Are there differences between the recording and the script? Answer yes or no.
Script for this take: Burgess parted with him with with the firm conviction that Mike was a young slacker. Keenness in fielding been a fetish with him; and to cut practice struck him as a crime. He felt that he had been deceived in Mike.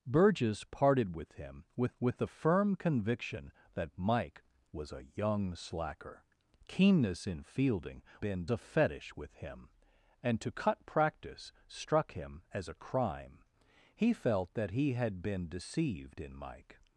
no